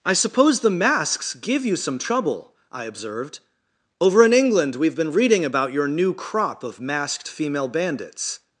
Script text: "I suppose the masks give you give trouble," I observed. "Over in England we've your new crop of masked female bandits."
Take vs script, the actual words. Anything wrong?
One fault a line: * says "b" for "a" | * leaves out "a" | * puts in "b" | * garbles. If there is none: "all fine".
* says "some" for "give"
* puts in "been reading about"